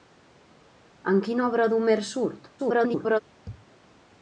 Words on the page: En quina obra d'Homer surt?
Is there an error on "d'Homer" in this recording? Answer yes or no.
no